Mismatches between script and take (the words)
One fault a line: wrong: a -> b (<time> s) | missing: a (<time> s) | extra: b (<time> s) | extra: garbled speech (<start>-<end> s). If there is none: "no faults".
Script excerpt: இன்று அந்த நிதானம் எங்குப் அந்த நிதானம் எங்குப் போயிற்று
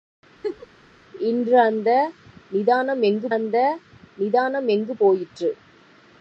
no faults